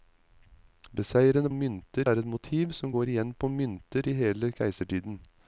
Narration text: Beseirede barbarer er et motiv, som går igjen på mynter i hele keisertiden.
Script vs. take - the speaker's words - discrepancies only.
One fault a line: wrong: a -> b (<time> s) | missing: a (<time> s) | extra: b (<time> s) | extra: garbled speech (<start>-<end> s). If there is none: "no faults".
wrong: barbarer -> mynter (1.5 s)